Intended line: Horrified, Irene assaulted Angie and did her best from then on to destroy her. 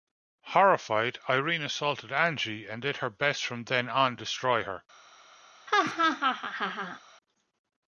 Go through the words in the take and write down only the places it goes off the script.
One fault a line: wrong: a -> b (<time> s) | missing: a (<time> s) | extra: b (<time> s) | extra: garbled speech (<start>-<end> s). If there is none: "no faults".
missing: to (4.2 s)